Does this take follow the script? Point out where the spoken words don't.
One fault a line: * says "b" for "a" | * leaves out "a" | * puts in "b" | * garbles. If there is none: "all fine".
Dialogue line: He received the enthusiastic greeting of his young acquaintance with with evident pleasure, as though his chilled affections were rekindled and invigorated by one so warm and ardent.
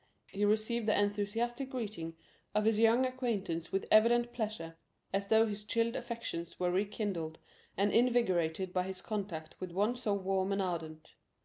* leaves out "with"
* puts in "his contact with"